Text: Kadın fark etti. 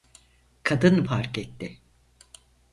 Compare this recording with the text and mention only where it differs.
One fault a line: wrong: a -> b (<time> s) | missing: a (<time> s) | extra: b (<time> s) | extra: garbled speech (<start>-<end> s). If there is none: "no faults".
no faults